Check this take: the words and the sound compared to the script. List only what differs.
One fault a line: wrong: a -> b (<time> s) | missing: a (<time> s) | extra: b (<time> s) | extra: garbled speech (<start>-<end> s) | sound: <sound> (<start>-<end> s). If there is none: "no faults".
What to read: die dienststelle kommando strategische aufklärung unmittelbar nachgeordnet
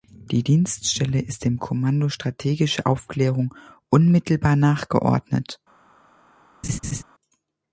extra: ist dem (1.2 s)
sound: laugh (6.6-7.0 s)